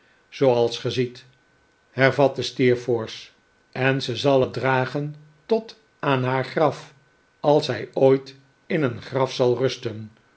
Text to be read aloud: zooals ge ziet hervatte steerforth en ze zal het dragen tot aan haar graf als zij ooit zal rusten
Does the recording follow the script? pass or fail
fail